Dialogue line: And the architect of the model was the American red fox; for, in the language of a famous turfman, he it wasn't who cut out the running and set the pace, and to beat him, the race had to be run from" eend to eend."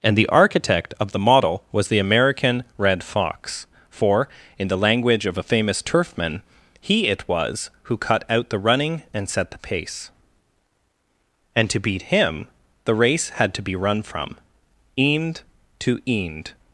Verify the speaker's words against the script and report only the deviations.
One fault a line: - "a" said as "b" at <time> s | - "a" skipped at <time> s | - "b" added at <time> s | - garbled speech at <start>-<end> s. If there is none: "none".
- "wasn't" said as "was" at 7.3 s